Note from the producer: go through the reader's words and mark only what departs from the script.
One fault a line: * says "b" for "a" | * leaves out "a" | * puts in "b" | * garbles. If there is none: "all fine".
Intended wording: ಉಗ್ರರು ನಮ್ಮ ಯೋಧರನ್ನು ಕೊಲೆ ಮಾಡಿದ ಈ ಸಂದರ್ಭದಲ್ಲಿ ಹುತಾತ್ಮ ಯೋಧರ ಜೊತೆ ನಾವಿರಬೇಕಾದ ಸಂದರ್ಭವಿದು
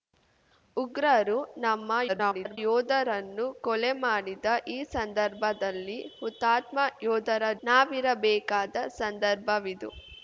* garbles
* leaves out "ಜೊತೆ"